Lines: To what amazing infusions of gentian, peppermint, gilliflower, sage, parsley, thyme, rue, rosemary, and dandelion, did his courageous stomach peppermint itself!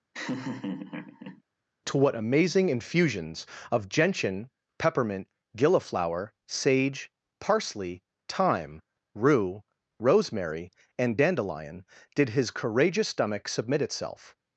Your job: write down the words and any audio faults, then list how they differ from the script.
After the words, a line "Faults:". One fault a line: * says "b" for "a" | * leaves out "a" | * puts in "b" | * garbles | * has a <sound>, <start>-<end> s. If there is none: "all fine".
To what amazing infusions of gentian, peppermint, gilliflower, sage, parsley, thyme, rue, rosemary, and dandelion, did his courageous stomach submit itself!
Faults:
* has a laugh, 0.1-1.4 s
* says "submit" for "peppermint"